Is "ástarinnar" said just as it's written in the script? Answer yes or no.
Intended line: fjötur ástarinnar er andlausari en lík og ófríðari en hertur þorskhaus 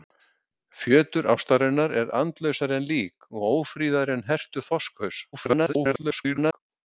yes